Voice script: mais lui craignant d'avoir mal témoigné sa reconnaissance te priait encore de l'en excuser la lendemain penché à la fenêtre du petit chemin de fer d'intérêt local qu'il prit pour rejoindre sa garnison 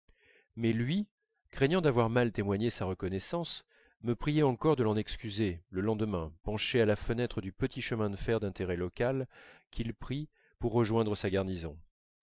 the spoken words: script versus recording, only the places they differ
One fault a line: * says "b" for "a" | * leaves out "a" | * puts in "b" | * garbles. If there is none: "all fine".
* says "me" for "te"
* says "le" for "la"